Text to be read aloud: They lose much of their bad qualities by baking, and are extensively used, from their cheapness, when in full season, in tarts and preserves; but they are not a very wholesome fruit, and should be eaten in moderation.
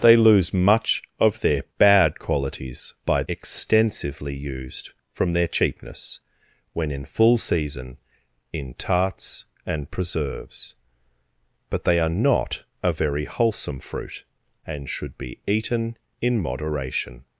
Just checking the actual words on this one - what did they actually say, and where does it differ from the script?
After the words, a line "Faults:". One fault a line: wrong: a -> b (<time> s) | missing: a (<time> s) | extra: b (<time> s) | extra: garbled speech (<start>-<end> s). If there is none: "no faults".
They lose much of their bad qualities by extensively used, from their cheapness, when in full season, in tarts and preserves; but they are not a very wholesome fruit, and should be eaten in moderation.
Faults:
missing: baking and are (3.2 s)